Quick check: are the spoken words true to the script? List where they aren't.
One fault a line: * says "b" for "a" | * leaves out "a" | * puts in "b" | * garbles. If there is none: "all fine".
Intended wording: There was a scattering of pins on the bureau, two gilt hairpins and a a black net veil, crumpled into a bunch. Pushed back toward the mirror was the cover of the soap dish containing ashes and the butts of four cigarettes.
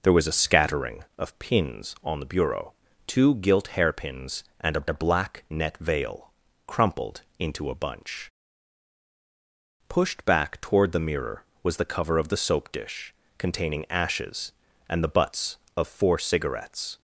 all fine